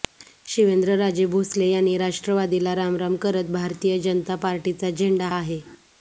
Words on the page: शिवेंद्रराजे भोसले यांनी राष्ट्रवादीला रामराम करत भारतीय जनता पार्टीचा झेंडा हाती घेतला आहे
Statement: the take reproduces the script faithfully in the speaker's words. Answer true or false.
false